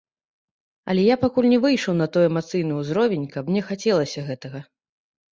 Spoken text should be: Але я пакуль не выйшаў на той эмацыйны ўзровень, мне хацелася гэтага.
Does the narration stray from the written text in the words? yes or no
yes